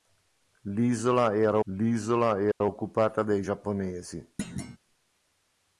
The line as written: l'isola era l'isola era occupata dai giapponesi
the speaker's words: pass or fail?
pass